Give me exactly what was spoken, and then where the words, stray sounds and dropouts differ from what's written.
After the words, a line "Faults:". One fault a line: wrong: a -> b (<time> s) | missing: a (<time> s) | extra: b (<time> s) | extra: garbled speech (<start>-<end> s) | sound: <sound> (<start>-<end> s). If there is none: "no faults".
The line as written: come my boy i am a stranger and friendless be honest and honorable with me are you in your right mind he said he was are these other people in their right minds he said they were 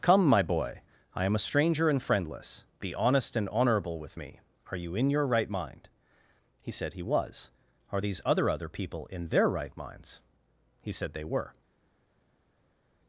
come my boy i am a stranger and friendless be honest and honorable with me are you in your right mind he said he was are these other other people in their right minds he said they were
Faults:
extra: other (8.5 s)